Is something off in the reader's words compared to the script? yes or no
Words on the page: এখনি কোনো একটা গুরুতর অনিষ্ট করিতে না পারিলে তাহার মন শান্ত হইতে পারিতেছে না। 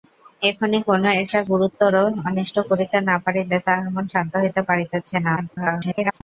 yes